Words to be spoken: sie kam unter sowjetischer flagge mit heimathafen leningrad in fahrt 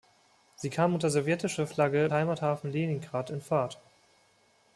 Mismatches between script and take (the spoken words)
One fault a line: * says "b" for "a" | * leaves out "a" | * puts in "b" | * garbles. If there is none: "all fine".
* leaves out "mit"